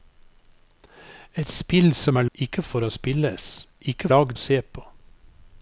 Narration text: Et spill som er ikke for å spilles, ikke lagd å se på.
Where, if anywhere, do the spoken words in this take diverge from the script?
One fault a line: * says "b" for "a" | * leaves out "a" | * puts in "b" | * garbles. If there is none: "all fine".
all fine